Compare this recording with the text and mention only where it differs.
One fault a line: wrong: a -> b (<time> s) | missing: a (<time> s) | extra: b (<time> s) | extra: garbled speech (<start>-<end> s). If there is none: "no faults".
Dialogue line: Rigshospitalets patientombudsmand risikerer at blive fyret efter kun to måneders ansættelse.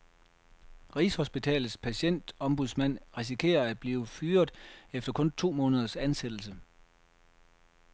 no faults